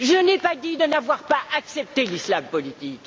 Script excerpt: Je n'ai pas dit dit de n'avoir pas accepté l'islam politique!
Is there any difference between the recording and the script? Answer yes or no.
yes